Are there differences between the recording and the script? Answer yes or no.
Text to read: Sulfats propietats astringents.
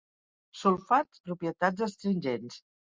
no